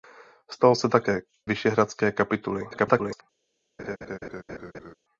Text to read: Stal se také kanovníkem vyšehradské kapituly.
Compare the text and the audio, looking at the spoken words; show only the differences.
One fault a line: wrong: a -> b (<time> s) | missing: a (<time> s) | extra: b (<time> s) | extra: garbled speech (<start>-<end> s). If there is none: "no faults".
missing: kanovníkem (1.2 s)
extra: garbled speech (2.7-3.2 s)